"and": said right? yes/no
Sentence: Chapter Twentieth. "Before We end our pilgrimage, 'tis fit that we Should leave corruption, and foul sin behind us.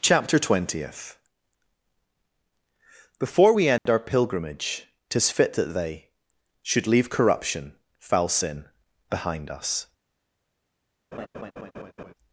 no